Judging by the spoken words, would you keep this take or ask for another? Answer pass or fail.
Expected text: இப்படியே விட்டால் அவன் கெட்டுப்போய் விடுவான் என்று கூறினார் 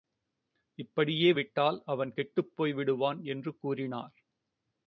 pass